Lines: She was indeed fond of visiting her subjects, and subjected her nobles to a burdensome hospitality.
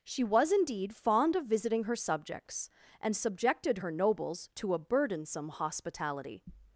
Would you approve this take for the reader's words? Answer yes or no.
yes